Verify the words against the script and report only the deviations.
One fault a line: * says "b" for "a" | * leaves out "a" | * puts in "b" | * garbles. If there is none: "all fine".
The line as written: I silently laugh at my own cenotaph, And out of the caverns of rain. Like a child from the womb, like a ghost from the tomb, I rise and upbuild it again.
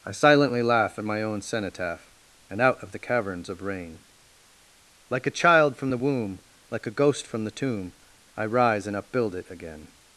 all fine